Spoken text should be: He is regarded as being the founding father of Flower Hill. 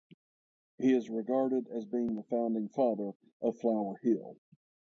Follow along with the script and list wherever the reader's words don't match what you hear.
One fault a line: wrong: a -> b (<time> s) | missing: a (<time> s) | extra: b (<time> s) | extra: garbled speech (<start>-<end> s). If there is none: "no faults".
no faults